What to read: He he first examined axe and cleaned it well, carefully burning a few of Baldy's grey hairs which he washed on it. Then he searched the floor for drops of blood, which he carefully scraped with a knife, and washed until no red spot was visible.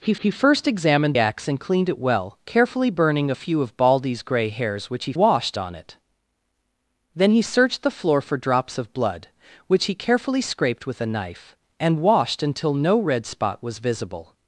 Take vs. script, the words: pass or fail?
pass